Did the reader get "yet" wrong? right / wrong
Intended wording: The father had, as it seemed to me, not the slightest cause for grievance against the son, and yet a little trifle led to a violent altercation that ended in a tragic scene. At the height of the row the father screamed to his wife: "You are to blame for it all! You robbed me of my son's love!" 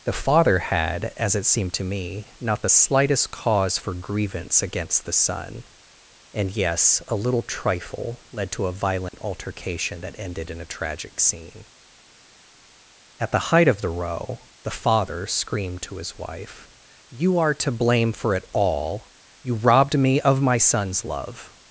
wrong